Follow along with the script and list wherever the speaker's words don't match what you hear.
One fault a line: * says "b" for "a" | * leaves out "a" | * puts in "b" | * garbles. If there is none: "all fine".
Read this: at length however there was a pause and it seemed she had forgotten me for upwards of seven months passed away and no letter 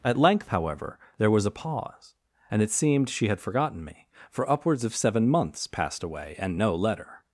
all fine